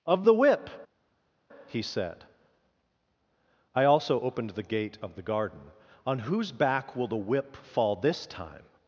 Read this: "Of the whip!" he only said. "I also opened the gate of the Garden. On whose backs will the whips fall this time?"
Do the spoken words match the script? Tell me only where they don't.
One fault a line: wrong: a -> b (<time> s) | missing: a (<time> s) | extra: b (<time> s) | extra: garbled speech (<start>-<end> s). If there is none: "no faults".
missing: only (1.8 s)
wrong: backs -> back (6.5 s)
wrong: whips -> whip (7.2 s)